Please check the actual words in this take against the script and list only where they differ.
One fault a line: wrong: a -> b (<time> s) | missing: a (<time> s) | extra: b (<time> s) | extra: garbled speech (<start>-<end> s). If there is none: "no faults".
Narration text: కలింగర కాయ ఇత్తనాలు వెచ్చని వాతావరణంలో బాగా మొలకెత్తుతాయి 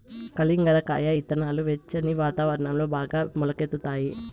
no faults